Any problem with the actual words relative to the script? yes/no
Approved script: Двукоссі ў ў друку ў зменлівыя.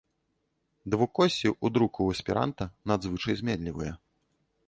yes